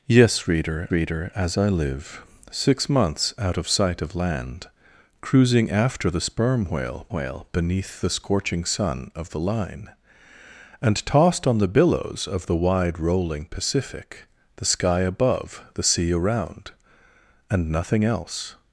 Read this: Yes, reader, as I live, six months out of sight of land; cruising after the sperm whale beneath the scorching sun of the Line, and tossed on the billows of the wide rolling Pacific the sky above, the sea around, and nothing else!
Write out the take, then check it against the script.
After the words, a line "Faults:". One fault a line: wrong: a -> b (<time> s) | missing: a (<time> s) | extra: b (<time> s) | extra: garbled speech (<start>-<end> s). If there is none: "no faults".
Yes, reader reader, as I live, six months out of sight of land; cruising after the sperm whale whale beneath the scorching sun of the Line, and tossed on the billows of the wide rolling Pacific the sky above, the sea around, and nothing else!
Faults:
extra: reader (0.9 s)
extra: whale (7.1 s)